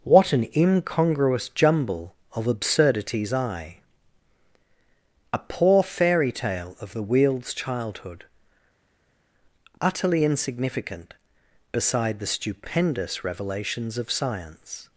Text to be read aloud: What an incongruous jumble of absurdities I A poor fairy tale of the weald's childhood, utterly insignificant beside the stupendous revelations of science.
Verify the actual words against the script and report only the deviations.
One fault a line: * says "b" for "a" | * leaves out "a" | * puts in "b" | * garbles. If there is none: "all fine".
all fine